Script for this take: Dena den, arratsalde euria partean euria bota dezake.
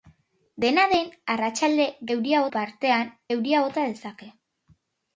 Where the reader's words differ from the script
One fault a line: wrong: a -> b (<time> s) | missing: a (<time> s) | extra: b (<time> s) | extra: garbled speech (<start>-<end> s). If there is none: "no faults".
no faults